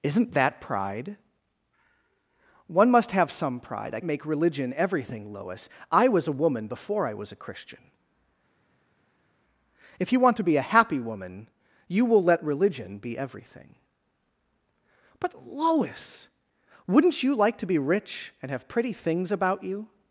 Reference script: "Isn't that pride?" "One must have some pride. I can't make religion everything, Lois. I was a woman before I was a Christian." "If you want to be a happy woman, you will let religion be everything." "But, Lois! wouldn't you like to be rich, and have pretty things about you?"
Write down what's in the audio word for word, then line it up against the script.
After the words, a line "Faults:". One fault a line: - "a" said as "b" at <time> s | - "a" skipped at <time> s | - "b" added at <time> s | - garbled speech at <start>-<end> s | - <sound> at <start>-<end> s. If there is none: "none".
"Isn't that pride?" "One must have some pride. I make religion everything, Lois. I was a woman before I was a Christian." "If you want to be a happy woman, you will let religion be everything." "But, Lois! wouldn't you like to be rich, and have pretty things about you?"
Faults:
- "can't" skipped at 4.0 s